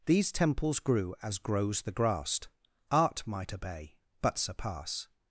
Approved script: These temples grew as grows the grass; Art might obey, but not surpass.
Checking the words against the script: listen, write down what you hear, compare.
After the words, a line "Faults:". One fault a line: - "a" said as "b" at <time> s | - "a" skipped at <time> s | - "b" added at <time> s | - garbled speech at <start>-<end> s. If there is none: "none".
These temples grew as grows the grass; Art might obey, but surpass.
Faults:
- "not" skipped at 4.4 s